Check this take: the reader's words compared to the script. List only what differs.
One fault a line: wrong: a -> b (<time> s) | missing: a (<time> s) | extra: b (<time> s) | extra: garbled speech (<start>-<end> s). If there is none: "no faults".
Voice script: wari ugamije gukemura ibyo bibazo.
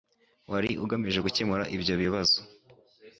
no faults